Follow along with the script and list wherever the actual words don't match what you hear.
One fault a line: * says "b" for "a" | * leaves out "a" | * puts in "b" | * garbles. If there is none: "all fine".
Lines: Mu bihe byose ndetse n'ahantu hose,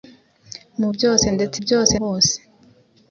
* leaves out "bihe"
* says "byose" for "n'ahantu"